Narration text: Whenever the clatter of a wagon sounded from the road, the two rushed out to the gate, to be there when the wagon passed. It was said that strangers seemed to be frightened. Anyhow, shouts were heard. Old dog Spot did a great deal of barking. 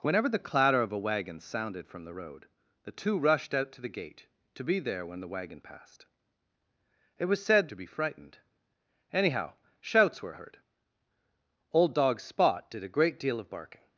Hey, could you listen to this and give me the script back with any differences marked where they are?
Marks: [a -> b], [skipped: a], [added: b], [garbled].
Whenever the clatter of a wagon sounded from the road, the two rushed out to the gate, to be there when the wagon passed. It was said [skipped: that strangers seemed] to be frightened. Anyhow, shouts were heard. Old dog Spot did a great deal of barking.